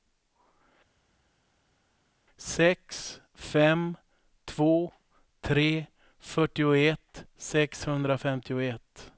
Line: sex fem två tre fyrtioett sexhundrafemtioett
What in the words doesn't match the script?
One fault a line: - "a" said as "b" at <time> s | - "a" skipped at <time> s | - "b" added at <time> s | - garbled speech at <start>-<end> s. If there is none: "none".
none